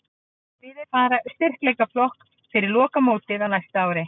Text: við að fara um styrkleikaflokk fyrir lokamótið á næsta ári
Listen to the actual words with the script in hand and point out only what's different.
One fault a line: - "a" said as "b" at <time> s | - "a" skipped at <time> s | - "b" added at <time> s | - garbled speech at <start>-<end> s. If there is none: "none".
none